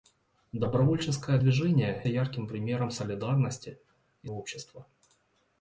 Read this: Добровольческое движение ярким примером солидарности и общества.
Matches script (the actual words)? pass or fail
pass